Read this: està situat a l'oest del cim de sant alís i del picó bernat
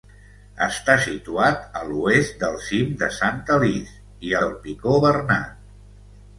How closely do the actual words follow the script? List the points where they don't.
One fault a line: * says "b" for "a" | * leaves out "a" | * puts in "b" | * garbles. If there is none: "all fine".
all fine